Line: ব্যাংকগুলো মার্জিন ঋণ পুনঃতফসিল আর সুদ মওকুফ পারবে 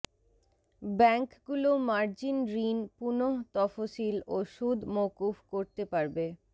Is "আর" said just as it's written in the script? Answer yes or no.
no